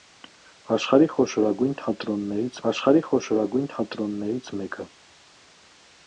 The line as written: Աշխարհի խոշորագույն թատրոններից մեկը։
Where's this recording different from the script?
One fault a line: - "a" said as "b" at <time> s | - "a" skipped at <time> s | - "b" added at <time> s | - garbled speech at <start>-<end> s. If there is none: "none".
- "աշխարհի խոշորագույն թատրոններից" added at 2.7 s